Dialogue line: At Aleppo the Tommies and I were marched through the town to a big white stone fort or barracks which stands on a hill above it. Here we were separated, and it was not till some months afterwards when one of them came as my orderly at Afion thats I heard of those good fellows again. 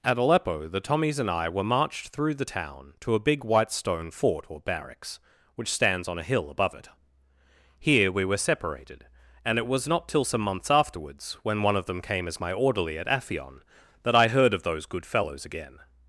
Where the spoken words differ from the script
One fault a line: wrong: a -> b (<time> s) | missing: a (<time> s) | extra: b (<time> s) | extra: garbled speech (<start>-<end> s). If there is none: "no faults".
wrong: thats -> that (14.0 s)